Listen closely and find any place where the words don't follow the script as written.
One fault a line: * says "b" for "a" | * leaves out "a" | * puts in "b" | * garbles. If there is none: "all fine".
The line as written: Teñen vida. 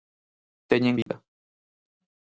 all fine